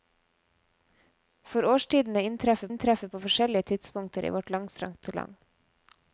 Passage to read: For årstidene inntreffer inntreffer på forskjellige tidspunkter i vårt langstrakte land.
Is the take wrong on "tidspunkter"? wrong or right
right